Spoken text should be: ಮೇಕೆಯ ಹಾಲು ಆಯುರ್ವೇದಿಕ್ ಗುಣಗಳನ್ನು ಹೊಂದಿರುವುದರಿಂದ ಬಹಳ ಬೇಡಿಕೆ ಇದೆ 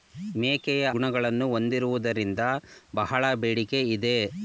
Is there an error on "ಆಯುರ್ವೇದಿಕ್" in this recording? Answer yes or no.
yes